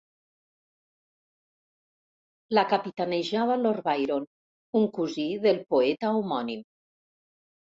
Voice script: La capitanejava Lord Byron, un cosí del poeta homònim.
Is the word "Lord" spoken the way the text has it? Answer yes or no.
yes